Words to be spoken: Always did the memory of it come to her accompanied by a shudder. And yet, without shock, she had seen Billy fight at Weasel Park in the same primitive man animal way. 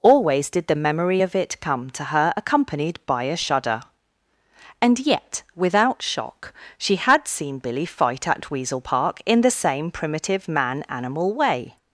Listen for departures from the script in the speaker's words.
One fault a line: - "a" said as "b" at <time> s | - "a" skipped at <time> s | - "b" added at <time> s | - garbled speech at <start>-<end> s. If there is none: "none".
none